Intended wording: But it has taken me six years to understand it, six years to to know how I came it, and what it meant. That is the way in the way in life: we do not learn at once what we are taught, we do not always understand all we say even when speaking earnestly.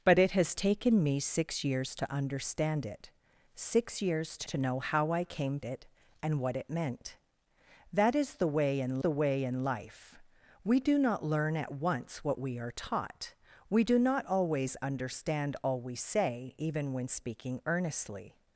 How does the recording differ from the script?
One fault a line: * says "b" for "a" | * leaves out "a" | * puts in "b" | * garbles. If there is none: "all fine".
all fine